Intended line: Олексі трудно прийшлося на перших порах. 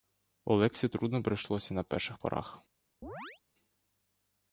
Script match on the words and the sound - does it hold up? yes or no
no